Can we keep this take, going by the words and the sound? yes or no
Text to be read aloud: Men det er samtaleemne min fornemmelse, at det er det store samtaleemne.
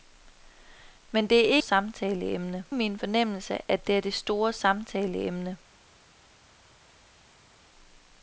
yes